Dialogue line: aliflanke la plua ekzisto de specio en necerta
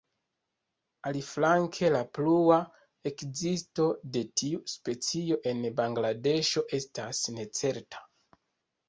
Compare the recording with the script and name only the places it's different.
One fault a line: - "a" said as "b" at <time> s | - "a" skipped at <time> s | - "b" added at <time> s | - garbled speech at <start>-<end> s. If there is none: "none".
- "tiu" added at 4.4 s
- "bangladeŝo estas" added at 5.8 s